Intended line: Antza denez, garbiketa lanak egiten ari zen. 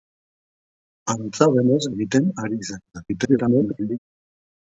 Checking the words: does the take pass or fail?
fail